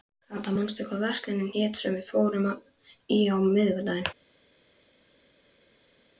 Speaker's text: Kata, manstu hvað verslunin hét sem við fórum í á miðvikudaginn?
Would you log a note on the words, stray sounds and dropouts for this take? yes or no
no